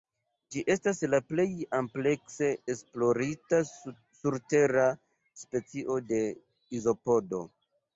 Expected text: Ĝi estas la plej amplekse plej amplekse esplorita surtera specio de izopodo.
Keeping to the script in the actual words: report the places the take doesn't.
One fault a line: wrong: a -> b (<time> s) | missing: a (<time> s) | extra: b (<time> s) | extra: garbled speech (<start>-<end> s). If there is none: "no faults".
missing: plej amplekse (2.5 s)